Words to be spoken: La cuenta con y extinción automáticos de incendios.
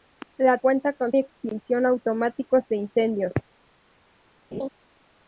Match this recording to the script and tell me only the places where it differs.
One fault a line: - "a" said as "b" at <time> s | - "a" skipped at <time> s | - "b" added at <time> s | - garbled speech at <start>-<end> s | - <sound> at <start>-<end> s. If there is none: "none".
- laugh at 4.5-4.7 s